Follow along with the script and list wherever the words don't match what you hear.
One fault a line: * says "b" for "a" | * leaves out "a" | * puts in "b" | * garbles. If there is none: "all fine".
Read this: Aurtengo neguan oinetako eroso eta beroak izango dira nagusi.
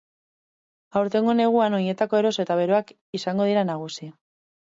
all fine